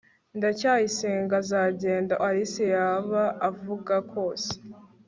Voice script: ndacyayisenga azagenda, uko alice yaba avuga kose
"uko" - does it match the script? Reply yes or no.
no